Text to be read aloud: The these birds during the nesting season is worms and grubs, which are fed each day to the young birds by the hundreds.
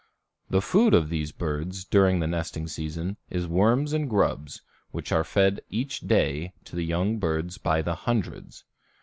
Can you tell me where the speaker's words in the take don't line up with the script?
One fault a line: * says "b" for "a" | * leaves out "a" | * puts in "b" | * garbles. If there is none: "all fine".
* puts in "food of"